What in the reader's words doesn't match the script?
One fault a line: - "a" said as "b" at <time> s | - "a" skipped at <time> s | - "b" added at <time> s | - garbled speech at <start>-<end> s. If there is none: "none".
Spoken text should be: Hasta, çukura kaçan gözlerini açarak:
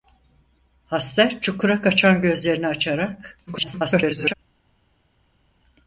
- garbled speech at 3.5-4.3 s